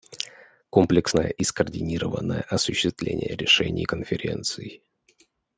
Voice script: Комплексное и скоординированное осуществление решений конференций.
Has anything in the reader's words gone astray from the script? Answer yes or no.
no